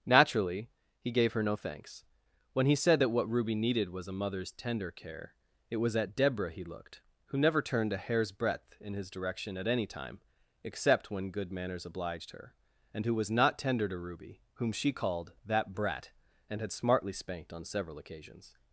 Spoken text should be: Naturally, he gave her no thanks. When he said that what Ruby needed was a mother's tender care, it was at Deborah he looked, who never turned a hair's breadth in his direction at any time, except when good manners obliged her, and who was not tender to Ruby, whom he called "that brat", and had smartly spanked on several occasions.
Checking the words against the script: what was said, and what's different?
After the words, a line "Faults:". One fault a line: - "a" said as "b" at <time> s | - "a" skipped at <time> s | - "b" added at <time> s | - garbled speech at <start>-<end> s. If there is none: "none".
Naturally, he gave her no thanks. When he said that what Ruby needed was a mother's tender care, it was at Deborah he looked, who never turned a hair's breadth in his direction at any time, except when good manners obliged her, and who was not tender to Ruby, whom she called "that brat", and had smartly spanked on several occasions.
Faults:
- "he" said as "she" at 14.7 s